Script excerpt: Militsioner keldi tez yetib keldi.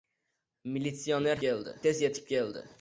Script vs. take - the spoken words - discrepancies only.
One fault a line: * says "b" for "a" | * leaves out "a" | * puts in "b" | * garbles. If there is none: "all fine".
all fine